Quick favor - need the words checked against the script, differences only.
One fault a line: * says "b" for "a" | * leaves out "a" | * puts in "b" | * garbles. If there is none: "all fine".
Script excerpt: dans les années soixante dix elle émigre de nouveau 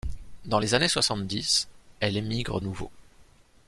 * leaves out "de"